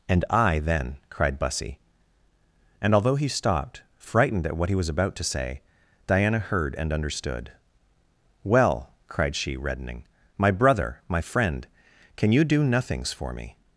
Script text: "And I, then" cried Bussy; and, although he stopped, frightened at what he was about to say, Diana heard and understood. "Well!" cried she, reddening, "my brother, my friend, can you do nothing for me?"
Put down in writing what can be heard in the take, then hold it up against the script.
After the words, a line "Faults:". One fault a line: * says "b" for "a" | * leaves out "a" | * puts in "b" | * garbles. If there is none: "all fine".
"And I, then" cried Bussy; and, although he stopped, frightened at what he was about to say, Diana heard and understood. "Well!" cried she, reddening, "my brother, my friend, can you do nothings for me?"
Faults:
* says "nothings" for "nothing"